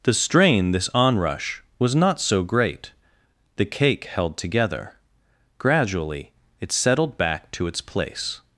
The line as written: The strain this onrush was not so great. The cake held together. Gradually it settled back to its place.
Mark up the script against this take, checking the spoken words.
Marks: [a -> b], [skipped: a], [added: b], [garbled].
The strain this onrush was not so great. The cake held together. Gradually it settled back to its place.